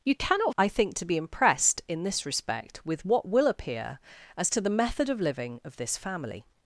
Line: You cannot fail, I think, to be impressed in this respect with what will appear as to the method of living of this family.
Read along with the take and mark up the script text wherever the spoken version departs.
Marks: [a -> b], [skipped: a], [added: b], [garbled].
You cannot [skipped: fail,] I think, to be impressed in this respect with what will appear as to the method of living of this family.